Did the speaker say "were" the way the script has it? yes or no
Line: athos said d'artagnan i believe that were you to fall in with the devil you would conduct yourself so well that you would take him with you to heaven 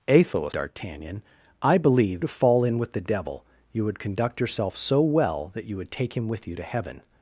no